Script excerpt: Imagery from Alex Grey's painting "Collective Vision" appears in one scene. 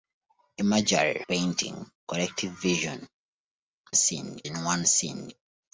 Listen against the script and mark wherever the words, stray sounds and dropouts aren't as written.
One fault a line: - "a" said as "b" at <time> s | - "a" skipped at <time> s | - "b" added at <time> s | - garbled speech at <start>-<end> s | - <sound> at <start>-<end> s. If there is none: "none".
- "from Alex Grey's" skipped at 1.2 s
- "appears" said as "scene" at 3.9 s